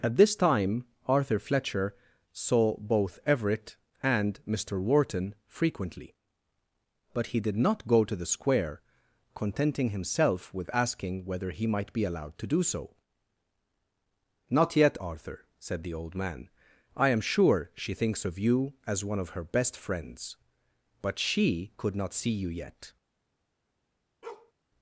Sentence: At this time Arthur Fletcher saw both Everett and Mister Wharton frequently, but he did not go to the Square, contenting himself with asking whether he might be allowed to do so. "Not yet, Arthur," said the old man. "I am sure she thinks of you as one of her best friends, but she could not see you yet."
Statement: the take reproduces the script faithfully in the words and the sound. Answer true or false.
false